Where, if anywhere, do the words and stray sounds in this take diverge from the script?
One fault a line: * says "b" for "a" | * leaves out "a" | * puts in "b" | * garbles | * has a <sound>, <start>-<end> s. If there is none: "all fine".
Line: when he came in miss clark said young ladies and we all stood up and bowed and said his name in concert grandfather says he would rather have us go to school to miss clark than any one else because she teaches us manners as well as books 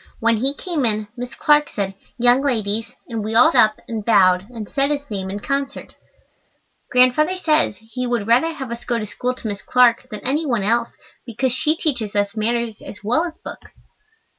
* leaves out "stood"